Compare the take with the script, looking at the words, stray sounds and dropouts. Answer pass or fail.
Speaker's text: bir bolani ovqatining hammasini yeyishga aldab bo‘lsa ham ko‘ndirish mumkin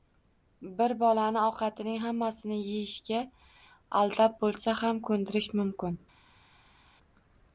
pass